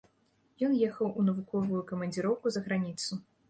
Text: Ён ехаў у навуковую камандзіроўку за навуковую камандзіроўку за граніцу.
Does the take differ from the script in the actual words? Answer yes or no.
yes